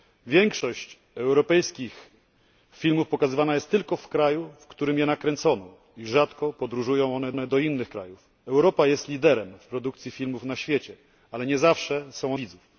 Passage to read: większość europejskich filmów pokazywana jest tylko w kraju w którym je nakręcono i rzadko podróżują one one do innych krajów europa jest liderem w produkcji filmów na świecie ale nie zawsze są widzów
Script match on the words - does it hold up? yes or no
yes